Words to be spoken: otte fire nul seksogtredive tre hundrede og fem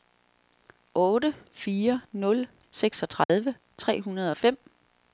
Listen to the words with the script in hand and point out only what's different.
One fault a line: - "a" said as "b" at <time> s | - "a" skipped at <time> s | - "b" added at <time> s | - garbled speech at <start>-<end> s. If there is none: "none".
none